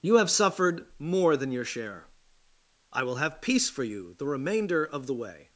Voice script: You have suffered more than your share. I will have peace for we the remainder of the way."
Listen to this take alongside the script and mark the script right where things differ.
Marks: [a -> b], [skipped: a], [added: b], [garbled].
You have suffered more than your share. I will have peace for [we -> you] the remainder of the way."